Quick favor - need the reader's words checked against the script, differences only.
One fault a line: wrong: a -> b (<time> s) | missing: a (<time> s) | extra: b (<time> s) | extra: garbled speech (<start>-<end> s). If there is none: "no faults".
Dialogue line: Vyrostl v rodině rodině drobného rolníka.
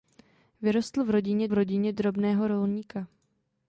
no faults